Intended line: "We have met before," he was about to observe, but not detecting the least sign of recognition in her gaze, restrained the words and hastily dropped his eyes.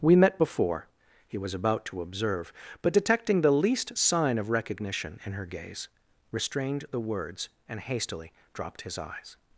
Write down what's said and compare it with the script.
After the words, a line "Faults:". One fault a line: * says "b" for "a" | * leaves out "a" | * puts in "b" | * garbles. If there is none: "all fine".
"We met before," he was about to observe, but detecting the least sign of recognition in her gaze, restrained the words and hastily dropped his eyes.
Faults:
* leaves out "have"
* leaves out "not"